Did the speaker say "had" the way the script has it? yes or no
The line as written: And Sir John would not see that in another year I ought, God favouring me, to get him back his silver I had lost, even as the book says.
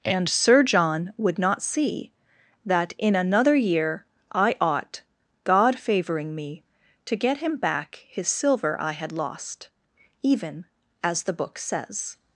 yes